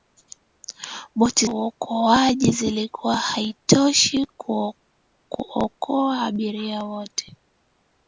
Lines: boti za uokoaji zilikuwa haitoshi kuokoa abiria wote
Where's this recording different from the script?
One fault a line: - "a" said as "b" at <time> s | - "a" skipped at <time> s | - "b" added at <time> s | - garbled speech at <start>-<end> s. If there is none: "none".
- "za" skipped at 1.4 s